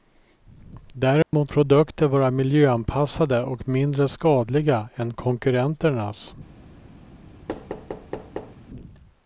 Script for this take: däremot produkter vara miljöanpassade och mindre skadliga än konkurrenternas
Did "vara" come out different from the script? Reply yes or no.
no